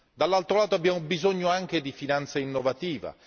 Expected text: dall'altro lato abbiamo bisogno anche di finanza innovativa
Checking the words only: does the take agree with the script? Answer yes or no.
yes